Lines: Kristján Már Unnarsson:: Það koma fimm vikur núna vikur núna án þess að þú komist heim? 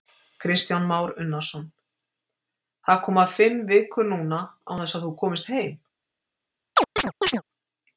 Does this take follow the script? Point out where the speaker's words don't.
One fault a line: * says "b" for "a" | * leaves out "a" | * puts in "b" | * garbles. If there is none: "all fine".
* leaves out "vikur núna"